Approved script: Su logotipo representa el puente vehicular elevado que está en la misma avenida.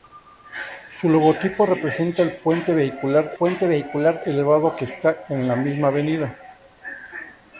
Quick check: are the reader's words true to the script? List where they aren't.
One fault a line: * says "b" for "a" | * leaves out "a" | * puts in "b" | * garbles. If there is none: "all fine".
* puts in "puente vehicular"